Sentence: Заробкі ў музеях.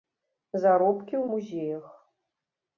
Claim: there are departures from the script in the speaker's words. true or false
false